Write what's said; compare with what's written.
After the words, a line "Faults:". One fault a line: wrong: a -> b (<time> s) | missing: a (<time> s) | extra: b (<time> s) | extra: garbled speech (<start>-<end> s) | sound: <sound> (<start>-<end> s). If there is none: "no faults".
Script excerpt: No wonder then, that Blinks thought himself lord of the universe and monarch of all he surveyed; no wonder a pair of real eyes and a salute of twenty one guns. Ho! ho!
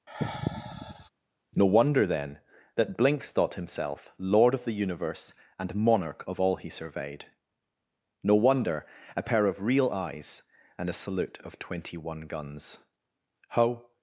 No wonder then, that Blinks thought himself lord of the universe and monarch of all he surveyed; no wonder a pair of real eyes and a salute of twenty one guns. Ho!
Faults:
sound: sigh (0.1-1.1 s)
missing: ho (13.9 s)